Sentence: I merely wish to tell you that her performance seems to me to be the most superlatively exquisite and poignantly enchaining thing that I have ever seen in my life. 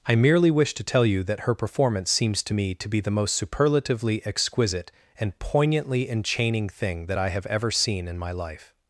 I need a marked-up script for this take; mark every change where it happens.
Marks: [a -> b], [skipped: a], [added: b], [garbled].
I merely wish to tell you that her performance seems to me to be the most superlatively exquisite and poignantly enchaining thing that I have ever seen in my life.